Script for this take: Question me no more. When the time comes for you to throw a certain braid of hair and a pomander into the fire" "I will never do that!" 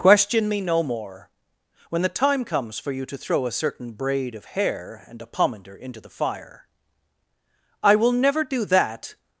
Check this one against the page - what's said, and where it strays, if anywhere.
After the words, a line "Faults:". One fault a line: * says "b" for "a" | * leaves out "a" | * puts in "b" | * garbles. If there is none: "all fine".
Question me no more. When the time comes for you to throw a certain braid of hair and a pomander into the fire" "I will never do that!"
Faults:
all fine